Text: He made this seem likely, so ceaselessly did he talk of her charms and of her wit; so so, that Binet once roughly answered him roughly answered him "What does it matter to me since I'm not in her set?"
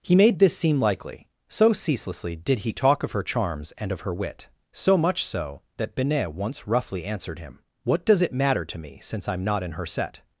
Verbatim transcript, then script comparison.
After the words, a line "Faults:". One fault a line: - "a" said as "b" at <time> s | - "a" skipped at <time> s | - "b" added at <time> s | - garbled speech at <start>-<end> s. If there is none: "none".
He made this seem likely, so ceaselessly did he talk of her charms and of her wit; so much so, that Binet once roughly answered him "What does it matter to me since I'm not in her set?"
Faults:
- "much" added at 5.0 s
- "roughly answered him" skipped at 7.6 s